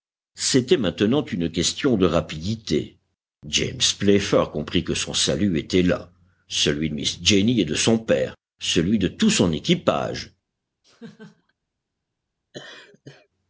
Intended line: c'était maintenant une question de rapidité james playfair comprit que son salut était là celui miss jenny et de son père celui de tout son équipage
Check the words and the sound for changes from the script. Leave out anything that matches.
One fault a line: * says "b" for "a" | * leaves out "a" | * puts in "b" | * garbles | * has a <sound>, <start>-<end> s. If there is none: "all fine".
* has a laugh, 10.8-11.5 s
* has a laugh, 12.5-13.3 s